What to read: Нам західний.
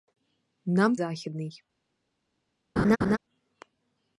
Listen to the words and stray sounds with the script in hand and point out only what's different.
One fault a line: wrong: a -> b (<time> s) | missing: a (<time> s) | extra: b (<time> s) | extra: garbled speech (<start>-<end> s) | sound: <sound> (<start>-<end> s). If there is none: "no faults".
sound: laugh (2.8-3.2 s)